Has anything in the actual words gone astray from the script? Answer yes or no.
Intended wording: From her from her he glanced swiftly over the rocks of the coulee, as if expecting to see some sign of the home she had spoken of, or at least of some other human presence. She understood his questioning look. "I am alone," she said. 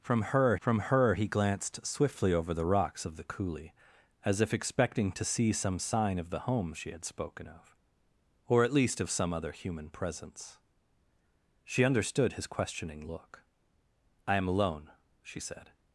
no